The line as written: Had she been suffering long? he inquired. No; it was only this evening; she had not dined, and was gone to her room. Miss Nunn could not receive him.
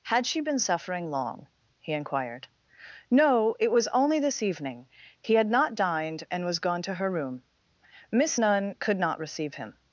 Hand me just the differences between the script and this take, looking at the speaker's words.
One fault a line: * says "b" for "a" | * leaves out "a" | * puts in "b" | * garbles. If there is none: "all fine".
* says "he" for "she"